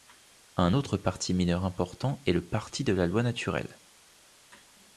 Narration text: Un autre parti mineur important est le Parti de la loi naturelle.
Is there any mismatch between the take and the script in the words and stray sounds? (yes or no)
no